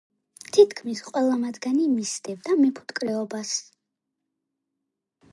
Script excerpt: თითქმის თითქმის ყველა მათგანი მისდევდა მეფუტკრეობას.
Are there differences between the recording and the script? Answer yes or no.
yes